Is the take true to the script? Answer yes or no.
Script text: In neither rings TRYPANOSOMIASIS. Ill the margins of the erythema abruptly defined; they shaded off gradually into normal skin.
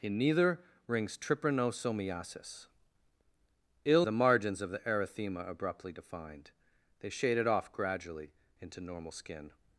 yes